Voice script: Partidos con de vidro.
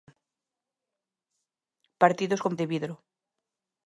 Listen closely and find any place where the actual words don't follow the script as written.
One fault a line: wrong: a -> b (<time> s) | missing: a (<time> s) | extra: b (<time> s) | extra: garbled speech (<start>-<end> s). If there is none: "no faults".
no faults